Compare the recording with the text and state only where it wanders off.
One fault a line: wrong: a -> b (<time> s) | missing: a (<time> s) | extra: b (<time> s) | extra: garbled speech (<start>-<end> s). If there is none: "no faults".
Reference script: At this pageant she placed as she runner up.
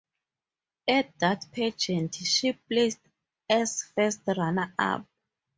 wrong: this -> that (1.2 s)
wrong: she -> first (3.8 s)